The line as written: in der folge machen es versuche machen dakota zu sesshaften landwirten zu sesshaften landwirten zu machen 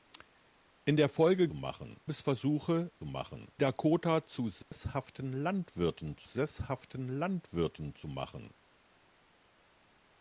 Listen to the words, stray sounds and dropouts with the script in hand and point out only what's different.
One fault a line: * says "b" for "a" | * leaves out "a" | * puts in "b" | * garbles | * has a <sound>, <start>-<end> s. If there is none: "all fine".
* has a dropout, 4.6-4.7 s